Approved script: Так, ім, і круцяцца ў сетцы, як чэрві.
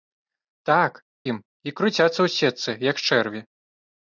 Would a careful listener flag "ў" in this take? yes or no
no